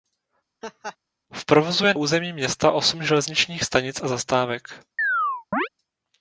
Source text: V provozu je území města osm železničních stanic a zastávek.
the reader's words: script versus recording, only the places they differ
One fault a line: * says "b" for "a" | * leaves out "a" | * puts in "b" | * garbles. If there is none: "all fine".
all fine